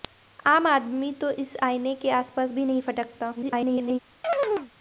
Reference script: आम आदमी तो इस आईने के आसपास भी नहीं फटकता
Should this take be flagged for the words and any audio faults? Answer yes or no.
yes